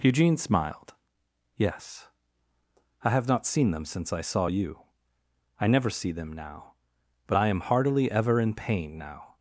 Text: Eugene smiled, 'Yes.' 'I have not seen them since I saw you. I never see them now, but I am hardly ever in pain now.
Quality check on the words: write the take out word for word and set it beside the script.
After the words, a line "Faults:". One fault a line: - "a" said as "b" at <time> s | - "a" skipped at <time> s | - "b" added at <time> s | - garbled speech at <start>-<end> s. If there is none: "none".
Eugene smiled, 'Yes.' 'I have not seen them since I saw you. I never see them now, but I am heartily ever in pain now.
Faults:
- "hardly" said as "heartily" at 7.6 s